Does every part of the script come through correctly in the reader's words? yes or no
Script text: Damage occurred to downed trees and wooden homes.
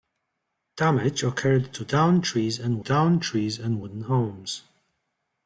no